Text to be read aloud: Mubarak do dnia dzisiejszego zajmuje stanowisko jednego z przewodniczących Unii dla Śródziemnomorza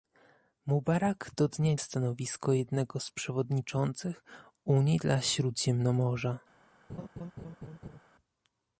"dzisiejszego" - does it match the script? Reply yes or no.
no